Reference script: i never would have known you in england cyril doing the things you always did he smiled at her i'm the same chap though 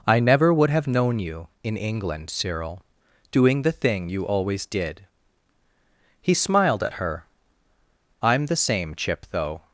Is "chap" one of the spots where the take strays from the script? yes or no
yes